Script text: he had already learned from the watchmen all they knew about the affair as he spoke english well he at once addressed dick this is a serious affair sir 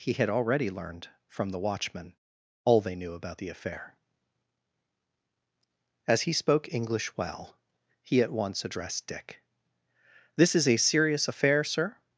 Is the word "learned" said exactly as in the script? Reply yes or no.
yes